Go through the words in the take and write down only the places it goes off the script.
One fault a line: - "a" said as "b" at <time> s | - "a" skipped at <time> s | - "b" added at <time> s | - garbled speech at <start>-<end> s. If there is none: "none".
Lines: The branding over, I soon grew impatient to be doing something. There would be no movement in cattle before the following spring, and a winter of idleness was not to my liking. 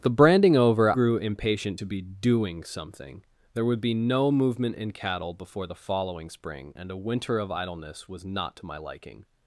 - "I soon" skipped at 0.9 s